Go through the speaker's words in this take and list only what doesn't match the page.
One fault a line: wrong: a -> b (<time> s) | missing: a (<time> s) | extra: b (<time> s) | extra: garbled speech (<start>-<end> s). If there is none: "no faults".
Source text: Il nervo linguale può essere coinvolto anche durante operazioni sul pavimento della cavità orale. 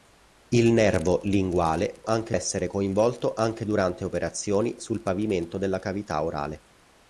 wrong: può -> anche (2.0 s)